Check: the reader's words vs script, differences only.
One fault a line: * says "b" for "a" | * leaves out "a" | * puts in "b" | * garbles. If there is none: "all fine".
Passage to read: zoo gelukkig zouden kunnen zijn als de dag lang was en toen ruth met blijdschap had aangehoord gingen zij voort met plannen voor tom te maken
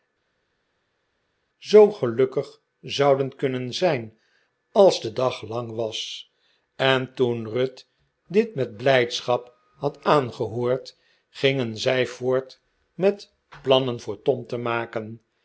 * puts in "dit"